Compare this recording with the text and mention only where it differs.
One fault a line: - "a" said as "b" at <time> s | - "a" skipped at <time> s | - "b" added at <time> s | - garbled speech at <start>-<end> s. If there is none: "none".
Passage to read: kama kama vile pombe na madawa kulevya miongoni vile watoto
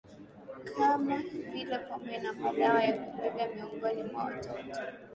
- "kama" skipped at 1.2 s
- "ya" added at 2.8 s
- "vile" said as "mwa" at 4.0 s